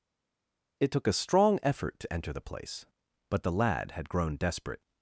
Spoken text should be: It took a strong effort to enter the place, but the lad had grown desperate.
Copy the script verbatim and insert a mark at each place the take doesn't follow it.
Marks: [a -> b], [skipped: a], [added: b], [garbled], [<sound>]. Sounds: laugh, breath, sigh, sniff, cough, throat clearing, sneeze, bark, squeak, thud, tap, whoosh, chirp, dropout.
It took a strong effort to enter the place, but the lad had grown desperate.